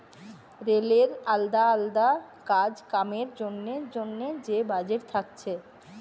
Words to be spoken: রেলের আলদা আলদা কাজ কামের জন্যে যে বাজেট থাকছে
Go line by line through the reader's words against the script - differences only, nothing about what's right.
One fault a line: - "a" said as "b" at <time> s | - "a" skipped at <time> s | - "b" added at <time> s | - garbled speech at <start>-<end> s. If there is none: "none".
- "জন্যে" added at 3.9 s